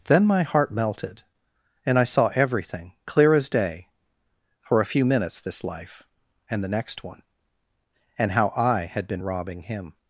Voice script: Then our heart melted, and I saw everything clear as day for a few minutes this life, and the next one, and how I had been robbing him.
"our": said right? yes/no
no